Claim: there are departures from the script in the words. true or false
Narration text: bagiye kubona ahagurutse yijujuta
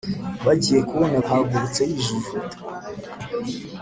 false